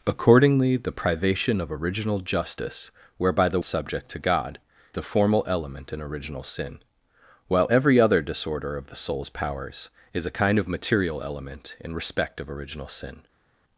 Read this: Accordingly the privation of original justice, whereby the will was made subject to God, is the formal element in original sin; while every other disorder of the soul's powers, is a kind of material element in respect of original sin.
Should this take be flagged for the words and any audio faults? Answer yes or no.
yes